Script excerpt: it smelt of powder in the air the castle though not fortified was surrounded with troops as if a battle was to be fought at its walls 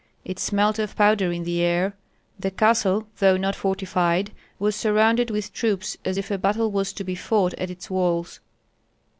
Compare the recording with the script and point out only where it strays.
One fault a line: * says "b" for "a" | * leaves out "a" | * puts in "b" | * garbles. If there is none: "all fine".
all fine